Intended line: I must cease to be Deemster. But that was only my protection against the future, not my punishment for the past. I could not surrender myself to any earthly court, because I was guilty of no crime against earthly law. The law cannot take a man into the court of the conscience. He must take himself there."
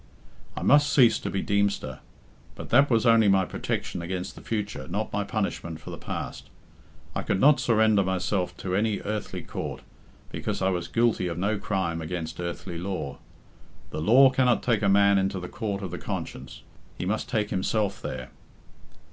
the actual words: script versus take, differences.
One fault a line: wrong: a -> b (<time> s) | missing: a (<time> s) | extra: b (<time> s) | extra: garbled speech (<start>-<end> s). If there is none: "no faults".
no faults